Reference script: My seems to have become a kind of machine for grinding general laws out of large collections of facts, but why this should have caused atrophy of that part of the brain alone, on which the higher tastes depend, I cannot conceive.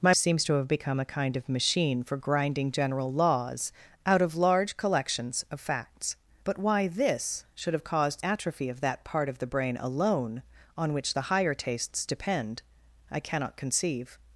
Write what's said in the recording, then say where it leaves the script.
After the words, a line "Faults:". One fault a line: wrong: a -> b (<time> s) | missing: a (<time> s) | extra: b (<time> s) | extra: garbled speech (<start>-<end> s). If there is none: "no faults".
My seems to have become a kind of machine for grinding general laws out of large collections of facts, but why this should have caused atrophy of that part of the brain alone, on which the higher tastes depend, I cannot conceive.
Faults:
no faults